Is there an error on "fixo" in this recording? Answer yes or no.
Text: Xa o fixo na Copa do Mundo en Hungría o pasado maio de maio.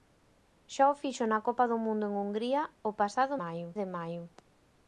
no